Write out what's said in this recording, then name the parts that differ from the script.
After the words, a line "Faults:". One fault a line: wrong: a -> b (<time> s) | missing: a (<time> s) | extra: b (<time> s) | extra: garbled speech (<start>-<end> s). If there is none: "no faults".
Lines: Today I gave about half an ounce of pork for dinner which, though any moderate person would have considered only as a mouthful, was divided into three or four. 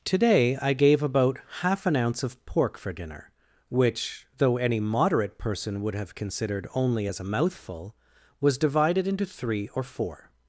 Today I gave about half an ounce of pork for dinner which, though any moderate person would have considered only as a mouthful, was divided into three or four.
Faults:
no faults